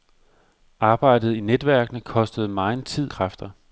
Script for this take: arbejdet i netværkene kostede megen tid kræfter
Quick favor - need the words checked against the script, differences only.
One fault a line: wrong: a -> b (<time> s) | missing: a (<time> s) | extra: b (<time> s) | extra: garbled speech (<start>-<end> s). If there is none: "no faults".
no faults